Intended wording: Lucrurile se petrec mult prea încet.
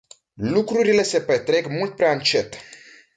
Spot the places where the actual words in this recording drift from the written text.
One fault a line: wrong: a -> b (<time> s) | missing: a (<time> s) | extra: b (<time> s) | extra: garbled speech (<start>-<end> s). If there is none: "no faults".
no faults